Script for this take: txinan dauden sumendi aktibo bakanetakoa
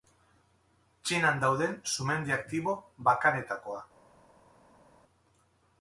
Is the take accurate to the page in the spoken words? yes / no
yes